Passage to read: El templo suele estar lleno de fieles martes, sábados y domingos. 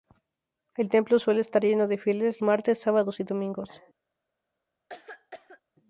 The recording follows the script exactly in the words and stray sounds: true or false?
false